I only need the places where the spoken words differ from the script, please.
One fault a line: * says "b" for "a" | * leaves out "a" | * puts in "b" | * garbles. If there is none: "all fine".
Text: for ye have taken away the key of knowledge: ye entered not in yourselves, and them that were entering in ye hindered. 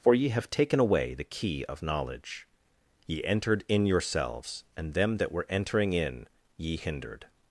* leaves out "not"